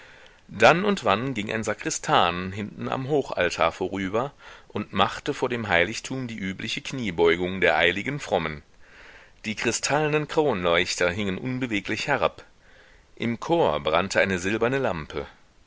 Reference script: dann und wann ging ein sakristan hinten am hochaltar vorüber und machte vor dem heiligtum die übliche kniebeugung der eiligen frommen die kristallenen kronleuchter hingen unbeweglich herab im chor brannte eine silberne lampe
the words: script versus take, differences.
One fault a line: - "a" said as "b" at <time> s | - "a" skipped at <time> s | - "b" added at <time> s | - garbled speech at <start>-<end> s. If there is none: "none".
none